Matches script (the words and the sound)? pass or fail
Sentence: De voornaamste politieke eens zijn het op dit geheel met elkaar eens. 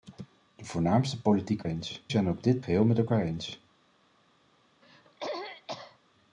fail